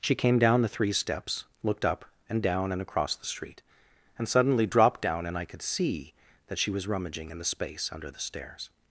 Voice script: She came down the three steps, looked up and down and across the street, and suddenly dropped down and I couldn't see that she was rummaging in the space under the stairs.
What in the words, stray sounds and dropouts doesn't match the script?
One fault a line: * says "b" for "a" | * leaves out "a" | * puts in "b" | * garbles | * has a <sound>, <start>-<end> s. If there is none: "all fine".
* says "could" for "couldn't"